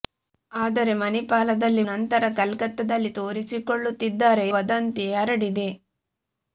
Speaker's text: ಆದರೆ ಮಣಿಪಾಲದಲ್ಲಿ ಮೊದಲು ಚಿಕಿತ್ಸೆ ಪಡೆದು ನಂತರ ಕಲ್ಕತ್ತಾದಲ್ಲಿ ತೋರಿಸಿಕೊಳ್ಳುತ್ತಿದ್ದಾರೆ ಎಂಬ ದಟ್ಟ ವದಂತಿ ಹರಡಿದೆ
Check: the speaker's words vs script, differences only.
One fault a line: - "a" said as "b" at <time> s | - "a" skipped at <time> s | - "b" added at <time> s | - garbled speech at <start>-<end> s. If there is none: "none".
- "ಮೊದಲು ಚಿಕಿತ್ಸೆ ಪಡೆದು" skipped at 1.8 s
- "ಎಂಬ ದಟ್ಟ" skipped at 4.5 s